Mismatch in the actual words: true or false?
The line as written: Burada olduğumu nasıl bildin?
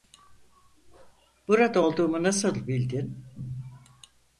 false